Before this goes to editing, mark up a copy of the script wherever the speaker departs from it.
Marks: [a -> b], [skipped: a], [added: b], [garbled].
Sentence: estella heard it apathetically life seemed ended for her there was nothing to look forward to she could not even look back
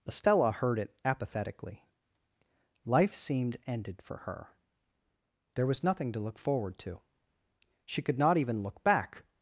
estella heard it apathetically life seemed ended for her there was nothing to look forward to she could not even look back